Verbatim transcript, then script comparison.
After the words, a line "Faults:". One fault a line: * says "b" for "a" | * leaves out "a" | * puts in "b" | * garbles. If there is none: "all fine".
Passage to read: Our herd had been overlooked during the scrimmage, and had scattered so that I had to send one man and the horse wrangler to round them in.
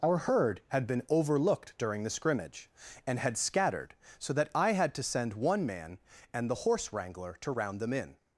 Our herd had been overlooked during the scrimmage, and had scattered so that I had to send one man and the horse wrangler to round them in.
Faults:
all fine